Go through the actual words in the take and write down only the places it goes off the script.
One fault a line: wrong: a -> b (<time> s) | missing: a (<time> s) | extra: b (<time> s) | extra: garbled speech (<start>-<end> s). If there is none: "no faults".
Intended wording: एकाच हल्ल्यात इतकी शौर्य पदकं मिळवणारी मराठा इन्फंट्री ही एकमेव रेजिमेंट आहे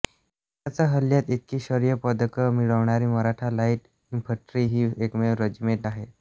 extra: लाईट (3.5 s)